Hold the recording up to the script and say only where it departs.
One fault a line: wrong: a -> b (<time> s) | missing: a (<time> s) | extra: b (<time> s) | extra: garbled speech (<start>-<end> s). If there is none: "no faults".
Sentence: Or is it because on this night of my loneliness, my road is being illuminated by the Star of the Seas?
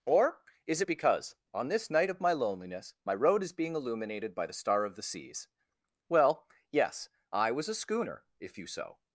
extra: Well yes I was a schooner if you so (6.1 s)